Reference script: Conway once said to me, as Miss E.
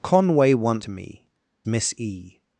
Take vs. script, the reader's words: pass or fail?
fail